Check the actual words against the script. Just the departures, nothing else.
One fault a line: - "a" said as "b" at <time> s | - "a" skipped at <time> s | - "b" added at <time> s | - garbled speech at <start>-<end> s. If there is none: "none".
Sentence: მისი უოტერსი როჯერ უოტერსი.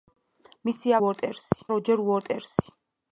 none